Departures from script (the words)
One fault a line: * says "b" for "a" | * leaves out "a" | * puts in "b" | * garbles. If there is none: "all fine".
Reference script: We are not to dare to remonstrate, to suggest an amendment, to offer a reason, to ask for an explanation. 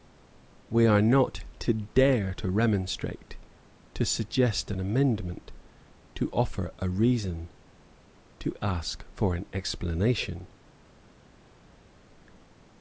all fine